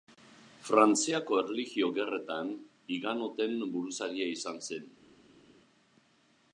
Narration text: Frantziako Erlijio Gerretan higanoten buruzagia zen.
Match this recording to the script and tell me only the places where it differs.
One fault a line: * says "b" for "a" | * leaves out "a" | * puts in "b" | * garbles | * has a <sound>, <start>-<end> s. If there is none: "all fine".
* puts in "izan"